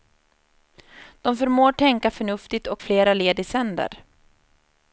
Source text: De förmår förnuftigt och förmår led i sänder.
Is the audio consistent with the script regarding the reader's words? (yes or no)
no